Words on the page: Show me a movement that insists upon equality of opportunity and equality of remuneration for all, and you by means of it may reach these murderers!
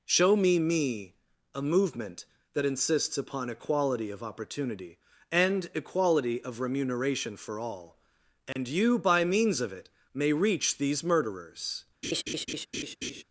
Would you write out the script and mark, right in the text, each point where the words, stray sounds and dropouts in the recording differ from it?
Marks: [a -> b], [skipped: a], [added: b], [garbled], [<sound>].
Show me [added: me] a movement that insists upon equality of opportunity and equality of remuneration for all, and [dropout] you by means of it may reach these murderers! [laugh]